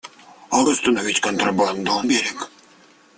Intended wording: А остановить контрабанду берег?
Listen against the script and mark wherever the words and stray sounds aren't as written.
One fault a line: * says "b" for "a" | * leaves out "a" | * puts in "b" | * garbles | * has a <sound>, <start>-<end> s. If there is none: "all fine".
all fine